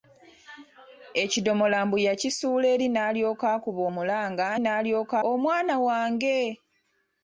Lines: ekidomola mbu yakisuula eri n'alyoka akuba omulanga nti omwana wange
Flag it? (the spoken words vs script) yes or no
yes